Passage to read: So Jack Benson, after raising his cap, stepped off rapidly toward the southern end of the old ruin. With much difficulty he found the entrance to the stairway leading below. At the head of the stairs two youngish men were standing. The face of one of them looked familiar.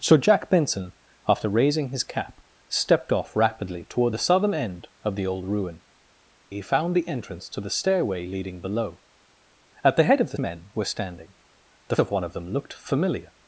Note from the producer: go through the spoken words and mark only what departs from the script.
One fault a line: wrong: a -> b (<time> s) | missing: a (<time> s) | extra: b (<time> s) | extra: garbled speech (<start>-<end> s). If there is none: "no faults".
missing: With much difficulty (5.8 s)
missing: stairs two youngish (10.4 s)
missing: face (12.0 s)